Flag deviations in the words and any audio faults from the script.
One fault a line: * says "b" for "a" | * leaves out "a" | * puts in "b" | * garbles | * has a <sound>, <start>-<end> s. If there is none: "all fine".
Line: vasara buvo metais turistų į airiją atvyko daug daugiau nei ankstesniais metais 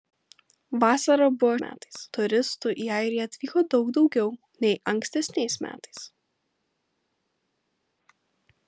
all fine